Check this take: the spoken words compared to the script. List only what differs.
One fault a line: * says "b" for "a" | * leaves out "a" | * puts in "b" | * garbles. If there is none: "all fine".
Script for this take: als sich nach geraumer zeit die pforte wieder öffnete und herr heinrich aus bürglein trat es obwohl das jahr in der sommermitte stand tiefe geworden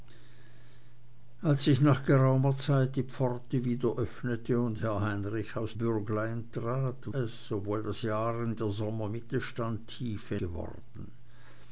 all fine